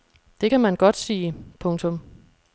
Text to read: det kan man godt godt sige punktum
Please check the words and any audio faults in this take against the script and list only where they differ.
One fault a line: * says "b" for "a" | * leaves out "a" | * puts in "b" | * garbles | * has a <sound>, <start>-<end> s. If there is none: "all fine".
* leaves out "godt"